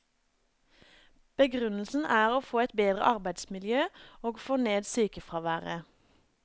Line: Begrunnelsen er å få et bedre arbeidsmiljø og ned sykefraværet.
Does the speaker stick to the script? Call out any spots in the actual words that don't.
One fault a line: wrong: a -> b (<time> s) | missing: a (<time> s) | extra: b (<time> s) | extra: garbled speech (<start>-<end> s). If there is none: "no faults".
extra: få (4.4 s)